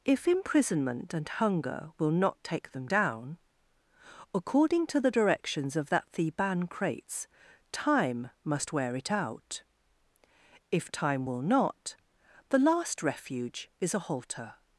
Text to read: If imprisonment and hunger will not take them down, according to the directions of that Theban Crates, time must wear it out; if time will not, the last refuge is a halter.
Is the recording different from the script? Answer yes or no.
no